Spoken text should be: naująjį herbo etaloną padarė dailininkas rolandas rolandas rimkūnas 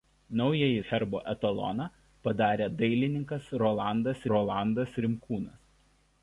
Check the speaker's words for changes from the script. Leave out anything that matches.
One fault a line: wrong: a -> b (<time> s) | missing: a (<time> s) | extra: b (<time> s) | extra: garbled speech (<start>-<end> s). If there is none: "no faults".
no faults